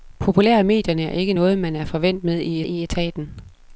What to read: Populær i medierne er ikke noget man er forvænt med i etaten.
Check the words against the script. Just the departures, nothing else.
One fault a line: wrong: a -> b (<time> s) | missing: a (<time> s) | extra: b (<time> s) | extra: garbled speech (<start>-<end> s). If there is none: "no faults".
extra: i (2.6 s)